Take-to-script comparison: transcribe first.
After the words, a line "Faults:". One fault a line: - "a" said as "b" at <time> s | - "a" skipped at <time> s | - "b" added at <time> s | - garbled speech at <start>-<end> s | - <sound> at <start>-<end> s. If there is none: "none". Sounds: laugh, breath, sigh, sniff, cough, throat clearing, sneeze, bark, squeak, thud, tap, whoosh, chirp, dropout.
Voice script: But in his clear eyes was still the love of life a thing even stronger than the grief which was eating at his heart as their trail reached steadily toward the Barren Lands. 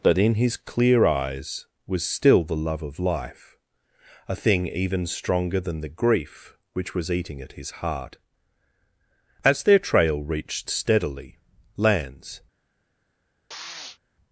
But in his clear eyes was still the love of life a thing even stronger than the grief which was eating at his heart as their trail reached steadily Lands.
Faults:
- "toward the Barren" skipped at 11.4 s
- sniff at 13.5-14.0 s